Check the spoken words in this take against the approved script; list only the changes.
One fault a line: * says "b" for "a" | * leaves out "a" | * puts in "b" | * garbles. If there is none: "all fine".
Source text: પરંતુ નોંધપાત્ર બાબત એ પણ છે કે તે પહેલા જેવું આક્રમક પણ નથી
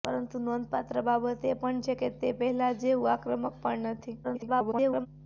* garbles